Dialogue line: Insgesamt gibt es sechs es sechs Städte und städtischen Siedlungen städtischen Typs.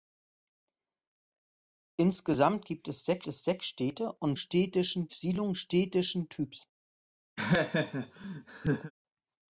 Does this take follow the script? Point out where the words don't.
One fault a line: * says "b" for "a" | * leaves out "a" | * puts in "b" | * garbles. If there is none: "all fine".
all fine